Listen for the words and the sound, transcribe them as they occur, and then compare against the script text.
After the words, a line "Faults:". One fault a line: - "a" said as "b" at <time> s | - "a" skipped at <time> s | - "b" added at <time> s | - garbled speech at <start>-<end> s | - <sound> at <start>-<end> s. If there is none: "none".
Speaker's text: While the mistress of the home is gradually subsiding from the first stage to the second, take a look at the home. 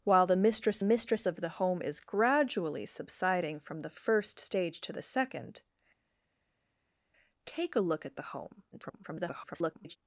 While the mistress mistress of the home is gradually subsiding from the first stage to the second, take a look at the home. [garbled]
Faults:
- "mistress" added at 0.8 s
- garbled speech at 8.7-10.0 s